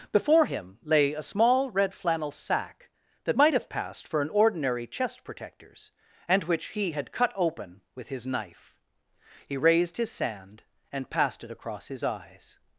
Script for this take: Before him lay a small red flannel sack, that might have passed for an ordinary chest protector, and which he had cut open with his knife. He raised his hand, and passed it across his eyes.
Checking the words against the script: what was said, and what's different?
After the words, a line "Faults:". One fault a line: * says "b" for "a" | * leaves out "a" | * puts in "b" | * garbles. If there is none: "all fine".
Before him lay a small red flannel sack, that might have passed for an ordinary chest protectors, and which he had cut open with his knife. He raised his sand, and passed it across his eyes.
Faults:
* says "protectors" for "protector"
* says "sand" for "hand"